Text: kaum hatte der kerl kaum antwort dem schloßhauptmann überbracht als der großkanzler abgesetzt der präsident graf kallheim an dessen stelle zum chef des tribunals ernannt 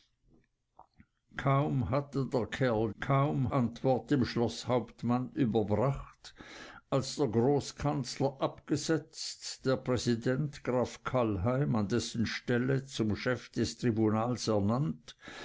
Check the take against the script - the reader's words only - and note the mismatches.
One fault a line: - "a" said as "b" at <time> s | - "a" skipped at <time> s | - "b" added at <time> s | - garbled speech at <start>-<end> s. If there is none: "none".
none